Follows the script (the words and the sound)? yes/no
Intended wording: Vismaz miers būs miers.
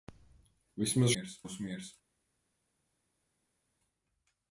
yes